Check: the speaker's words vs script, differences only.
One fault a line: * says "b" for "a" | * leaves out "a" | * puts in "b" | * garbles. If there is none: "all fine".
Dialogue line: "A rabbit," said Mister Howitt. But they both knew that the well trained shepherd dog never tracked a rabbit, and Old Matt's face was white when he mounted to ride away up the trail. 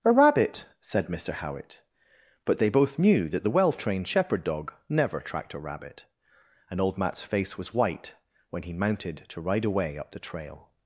all fine